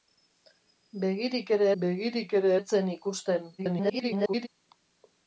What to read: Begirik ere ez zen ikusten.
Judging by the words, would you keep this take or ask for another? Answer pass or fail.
fail